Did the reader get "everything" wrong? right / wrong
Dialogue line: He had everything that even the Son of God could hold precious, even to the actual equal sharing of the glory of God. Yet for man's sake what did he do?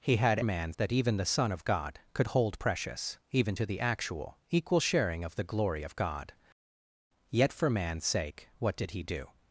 wrong